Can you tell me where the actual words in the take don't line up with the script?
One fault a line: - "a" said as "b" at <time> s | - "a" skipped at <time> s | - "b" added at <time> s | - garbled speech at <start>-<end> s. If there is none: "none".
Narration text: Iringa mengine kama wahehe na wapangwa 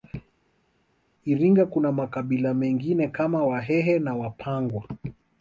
- "kuna makabila" added at 1.7 s